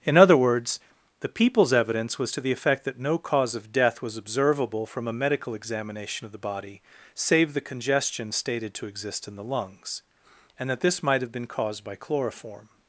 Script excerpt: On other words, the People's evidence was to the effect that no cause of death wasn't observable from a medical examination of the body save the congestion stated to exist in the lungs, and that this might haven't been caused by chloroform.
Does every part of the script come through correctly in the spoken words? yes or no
no